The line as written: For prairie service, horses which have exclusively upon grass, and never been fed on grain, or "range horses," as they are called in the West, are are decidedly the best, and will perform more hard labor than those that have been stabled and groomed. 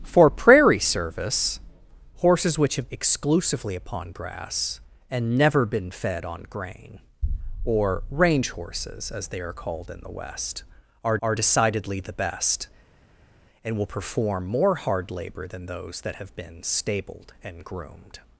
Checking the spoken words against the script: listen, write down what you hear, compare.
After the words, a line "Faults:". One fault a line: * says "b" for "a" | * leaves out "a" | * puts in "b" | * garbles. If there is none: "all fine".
For prairie service, horses which have exclusively upon grass, and never been fed on grain, or "range horses," as they are called in the West, are are decidedly the best, and will perform more hard labor than those that have been stabled and groomed.
Faults:
all fine